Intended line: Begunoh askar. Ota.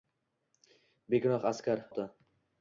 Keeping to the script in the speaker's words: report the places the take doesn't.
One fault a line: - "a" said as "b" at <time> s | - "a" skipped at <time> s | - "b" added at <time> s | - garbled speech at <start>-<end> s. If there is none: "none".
none